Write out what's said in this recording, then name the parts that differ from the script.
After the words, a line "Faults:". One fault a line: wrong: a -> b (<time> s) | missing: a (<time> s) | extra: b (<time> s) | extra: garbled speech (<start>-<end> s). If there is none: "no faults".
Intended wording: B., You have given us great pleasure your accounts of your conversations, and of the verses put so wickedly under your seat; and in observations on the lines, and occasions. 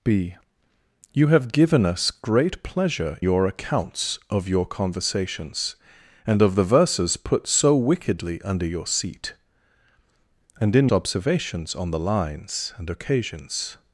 B., You have given us great pleasure your accounts of your conversations, and of the verses put so wickedly under your seat; and in observations on the lines, and occasions.
Faults:
no faults